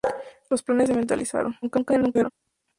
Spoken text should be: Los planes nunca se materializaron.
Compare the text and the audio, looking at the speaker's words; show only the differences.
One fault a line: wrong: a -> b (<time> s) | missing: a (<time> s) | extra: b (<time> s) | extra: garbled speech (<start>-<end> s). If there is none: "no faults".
missing: nunca (0.9 s)
extra: garbled speech (1.6-2.3 s)